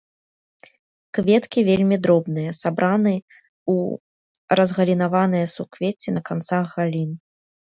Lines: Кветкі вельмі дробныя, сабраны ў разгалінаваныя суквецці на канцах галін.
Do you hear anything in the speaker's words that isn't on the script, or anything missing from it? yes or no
no